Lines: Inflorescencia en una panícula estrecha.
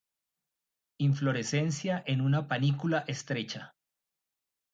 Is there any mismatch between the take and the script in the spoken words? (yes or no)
no